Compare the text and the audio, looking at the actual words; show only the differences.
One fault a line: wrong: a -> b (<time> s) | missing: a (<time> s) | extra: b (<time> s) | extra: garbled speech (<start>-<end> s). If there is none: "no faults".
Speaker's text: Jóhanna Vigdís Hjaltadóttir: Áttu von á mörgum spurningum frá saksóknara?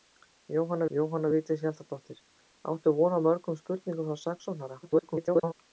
extra: jóhanna (0.9 s)
extra: garbled speech (4.8-5.5 s)